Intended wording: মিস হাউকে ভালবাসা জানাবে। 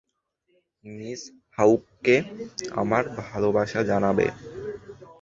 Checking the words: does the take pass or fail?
fail